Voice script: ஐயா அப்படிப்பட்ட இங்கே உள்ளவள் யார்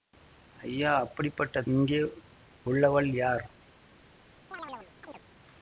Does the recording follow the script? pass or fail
pass